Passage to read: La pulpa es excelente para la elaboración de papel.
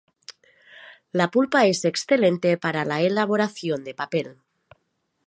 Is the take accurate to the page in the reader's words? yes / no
yes